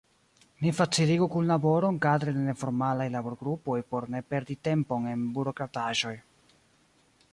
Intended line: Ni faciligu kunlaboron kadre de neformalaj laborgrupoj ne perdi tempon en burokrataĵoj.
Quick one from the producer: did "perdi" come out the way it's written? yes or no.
yes